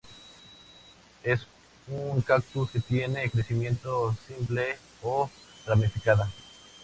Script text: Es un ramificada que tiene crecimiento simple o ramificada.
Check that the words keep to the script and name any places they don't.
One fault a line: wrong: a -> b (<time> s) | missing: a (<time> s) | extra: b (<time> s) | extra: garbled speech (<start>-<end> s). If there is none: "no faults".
wrong: ramificada -> cactus (2.2 s)